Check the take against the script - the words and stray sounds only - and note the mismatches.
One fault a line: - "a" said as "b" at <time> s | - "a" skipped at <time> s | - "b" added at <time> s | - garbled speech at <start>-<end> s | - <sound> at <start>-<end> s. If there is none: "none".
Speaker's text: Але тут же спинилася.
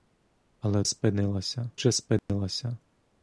- "тут" said as "спинилася" at 0.8 s
- dropout at 2.2-2.3 s